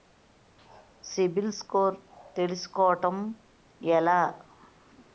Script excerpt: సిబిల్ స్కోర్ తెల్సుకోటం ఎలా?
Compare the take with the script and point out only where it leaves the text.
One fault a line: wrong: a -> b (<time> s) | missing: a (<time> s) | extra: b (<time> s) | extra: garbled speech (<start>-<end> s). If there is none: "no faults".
no faults